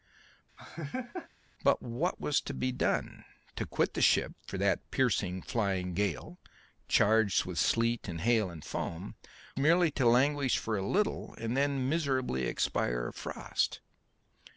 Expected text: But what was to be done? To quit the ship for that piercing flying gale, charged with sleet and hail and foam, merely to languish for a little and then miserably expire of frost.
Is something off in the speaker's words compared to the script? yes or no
no